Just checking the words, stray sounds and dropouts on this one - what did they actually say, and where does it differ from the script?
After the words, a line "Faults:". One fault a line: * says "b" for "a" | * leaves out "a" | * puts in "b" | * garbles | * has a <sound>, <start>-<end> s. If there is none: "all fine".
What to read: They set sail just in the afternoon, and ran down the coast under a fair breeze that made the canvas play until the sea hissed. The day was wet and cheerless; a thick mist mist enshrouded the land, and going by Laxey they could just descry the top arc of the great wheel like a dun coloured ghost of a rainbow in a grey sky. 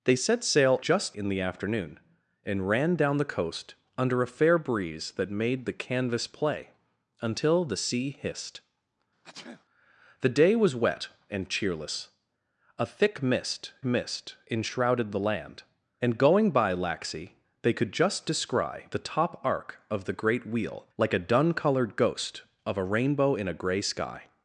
They set sail just in the afternoon, and ran down the coast under a fair breeze that made the canvas play until the sea hissed. The day was wet and cheerless; a thick mist mist enshrouded the land, and going by Laxey they could just descry the top arc of the great wheel like a dun coloured ghost of a rainbow in a grey sky.
Faults:
* has a sneeze, 9.2-9.7 s